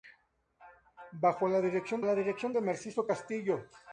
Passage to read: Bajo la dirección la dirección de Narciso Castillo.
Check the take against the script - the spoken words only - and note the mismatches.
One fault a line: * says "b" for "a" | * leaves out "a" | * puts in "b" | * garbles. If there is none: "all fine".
all fine